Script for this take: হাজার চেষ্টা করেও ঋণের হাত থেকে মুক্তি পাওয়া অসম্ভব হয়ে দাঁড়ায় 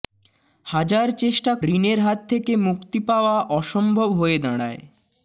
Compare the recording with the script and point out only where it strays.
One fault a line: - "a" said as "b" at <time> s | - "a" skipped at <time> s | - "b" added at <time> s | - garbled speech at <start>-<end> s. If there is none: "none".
- "করেও" skipped at 1.5 s